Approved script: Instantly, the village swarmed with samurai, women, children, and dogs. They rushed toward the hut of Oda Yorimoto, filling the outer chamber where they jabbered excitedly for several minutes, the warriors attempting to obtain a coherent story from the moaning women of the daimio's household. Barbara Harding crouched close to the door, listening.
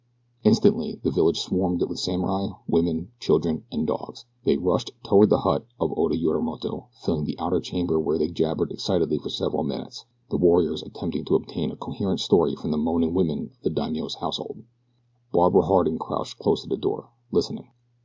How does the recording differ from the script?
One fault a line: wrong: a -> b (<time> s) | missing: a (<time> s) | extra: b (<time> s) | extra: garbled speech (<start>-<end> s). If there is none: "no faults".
no faults